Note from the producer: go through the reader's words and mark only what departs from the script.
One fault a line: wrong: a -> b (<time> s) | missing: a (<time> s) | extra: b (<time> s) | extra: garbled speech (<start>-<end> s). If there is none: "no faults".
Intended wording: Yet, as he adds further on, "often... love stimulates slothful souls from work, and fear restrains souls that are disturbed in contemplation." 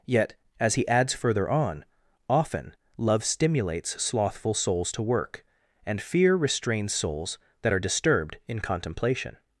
wrong: from -> to (4.9 s)